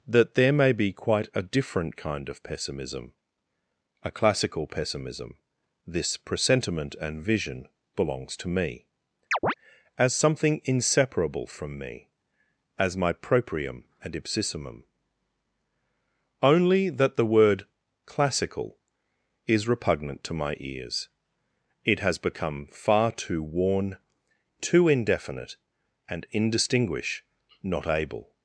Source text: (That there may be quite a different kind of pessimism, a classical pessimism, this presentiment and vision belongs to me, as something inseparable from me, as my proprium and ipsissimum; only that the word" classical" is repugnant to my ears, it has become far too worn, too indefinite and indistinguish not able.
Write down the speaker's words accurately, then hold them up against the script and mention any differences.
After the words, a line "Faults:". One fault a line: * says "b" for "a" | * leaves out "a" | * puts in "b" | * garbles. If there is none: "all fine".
(That there may be quite a different kind of pessimism, a classical pessimism, this presentiment and vision belongs to me, as something inseparable from me, as my proprium and ipsissimum; only that the word" classical" is repugnant to my ears, it has become far too worn, too indefinite and indistinguish not able.
Faults:
all fine